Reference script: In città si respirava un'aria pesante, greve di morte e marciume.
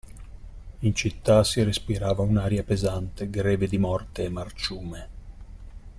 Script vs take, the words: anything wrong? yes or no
no